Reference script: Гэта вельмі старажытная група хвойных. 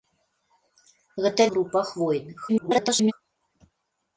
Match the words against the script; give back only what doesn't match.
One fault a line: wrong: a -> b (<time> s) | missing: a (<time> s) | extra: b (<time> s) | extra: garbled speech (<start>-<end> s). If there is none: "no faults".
missing: вельмі старажытная (1.4 s)
extra: garbled speech (2.5-3.1 s)